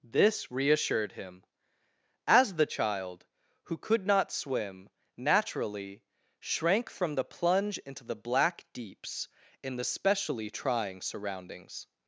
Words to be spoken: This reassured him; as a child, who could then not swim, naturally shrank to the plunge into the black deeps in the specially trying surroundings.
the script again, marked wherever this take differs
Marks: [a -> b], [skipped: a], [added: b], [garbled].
This reassured him; as [a -> the] child, who could [skipped: then] not swim, naturally shrank [to -> from] the plunge into the black deeps in the specially trying surroundings.